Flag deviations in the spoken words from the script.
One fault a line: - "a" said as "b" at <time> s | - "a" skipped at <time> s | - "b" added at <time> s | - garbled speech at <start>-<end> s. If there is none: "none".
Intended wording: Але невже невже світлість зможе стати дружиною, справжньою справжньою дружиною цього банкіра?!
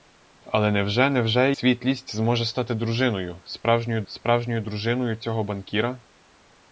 none